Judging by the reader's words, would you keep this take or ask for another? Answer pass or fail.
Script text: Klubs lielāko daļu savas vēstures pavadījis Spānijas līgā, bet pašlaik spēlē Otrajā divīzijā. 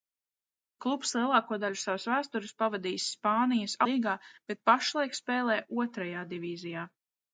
pass